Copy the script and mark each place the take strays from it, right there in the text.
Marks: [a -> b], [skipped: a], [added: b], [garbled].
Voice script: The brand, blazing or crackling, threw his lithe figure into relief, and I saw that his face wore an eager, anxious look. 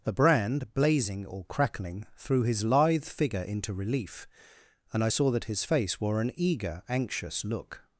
The brand, blazing or crackling, threw his lithe figure into relief, and I saw that his face wore an eager, anxious look.